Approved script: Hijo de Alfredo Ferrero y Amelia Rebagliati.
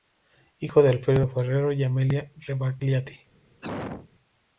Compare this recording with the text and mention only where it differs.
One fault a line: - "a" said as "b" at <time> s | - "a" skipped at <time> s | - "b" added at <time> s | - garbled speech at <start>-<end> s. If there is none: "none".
none